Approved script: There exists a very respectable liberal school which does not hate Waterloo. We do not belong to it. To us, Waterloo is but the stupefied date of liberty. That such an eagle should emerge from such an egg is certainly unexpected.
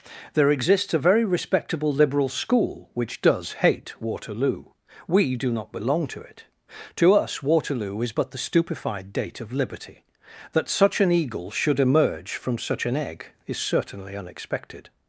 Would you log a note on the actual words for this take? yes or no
yes